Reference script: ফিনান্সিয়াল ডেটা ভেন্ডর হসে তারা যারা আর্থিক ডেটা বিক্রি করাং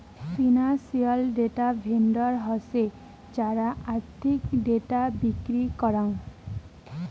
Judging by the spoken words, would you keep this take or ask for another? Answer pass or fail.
fail